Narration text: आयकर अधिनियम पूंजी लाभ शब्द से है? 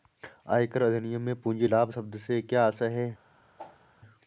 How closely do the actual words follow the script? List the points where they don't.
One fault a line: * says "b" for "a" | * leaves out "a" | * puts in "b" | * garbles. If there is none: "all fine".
* puts in "में"
* puts in "क्या आशय"